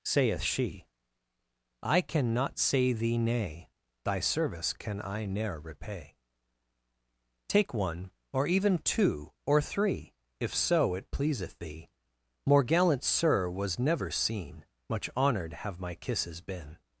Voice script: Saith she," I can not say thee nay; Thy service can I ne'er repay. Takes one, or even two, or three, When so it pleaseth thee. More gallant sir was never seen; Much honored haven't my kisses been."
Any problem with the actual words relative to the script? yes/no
yes